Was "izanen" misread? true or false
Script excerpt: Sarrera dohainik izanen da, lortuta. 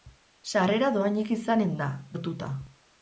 false